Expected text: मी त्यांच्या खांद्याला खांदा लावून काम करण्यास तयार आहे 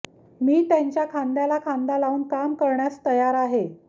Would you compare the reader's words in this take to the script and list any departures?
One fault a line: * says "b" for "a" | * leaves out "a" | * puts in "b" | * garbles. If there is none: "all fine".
all fine